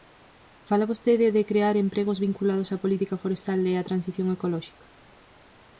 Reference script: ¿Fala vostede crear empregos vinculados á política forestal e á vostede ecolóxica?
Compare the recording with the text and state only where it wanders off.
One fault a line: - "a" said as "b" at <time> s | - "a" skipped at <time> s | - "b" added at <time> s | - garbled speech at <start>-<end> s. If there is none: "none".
- "de" added at 1.4 s
- "vostede" said as "transición" at 3.9 s